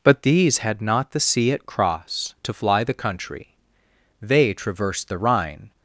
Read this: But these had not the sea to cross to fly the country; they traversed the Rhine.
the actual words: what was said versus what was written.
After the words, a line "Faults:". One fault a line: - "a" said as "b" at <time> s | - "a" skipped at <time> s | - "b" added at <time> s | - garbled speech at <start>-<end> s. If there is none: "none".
But these had not the sea at cross to fly the country; they traversed the Rhine.
Faults:
- "to" said as "at" at 1.5 s